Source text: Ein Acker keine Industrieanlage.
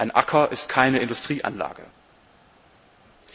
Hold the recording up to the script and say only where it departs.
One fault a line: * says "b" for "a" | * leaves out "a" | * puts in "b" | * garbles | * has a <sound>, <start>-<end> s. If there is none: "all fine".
* puts in "ist"